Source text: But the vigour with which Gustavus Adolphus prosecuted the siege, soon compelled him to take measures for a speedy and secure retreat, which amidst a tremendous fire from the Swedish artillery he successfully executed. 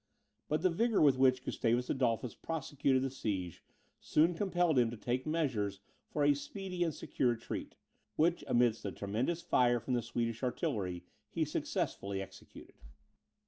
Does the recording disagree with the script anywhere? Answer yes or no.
no